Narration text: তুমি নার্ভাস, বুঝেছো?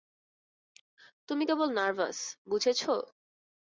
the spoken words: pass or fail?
fail